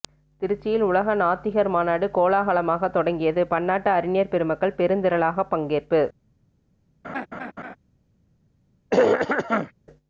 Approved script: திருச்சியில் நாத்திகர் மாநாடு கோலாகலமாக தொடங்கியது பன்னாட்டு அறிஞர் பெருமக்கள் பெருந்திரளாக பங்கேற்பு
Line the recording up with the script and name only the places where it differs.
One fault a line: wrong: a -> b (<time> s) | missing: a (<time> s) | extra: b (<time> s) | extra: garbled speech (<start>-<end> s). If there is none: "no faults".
extra: உலக (0.8 s)